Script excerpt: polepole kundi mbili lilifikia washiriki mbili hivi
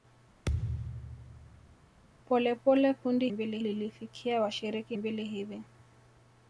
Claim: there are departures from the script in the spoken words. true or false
false